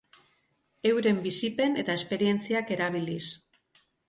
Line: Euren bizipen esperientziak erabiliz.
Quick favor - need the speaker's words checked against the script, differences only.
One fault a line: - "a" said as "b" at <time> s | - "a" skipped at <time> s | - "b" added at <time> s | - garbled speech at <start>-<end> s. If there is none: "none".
- "eta" added at 1.8 s